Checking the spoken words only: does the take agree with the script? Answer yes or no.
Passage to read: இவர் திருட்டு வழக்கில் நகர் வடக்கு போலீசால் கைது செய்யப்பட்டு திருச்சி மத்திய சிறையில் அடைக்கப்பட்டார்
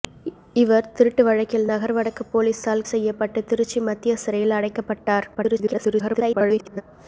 no